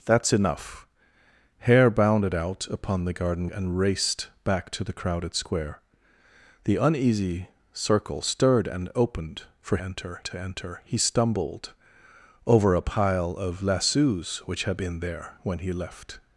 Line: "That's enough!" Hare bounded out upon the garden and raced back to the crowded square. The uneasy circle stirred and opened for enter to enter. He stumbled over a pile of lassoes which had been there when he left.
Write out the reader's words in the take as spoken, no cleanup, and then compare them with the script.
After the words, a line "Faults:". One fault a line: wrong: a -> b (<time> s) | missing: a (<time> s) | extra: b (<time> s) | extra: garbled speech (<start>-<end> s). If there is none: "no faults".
"That's enough!" Hare bounded out upon the garden and raced back to the crowded square. The uneasy circle stirred and opened for enter to enter. He stumbled over a pile of lassoes which had been there when he left.
Faults:
no faults